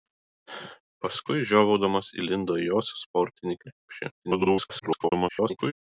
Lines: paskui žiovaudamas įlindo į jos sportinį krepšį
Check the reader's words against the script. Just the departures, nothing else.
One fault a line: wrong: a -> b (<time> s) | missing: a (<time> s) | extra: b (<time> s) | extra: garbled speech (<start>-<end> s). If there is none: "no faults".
extra: garbled speech (4.2-5.7 s)